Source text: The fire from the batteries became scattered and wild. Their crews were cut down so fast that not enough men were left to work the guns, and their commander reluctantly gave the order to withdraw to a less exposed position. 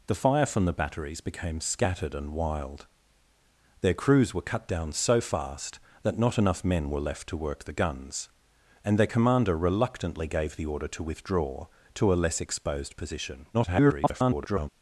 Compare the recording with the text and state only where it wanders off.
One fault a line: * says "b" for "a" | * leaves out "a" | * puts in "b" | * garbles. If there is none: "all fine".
* garbles